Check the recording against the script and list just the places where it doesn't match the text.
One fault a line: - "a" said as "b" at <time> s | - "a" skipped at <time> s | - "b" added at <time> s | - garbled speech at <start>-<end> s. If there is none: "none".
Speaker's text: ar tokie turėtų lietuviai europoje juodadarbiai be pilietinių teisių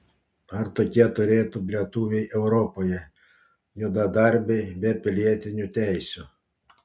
none